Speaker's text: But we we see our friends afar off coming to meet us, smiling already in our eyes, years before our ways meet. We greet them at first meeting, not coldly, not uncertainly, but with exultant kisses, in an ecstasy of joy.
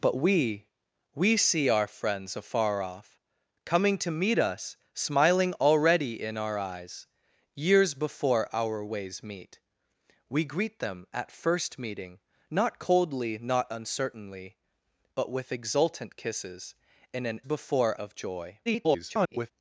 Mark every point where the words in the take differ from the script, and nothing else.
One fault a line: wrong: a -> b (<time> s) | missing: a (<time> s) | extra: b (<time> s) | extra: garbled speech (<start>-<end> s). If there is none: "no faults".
wrong: ecstasy -> before (17.4 s)
extra: garbled speech (18.7-19.5 s)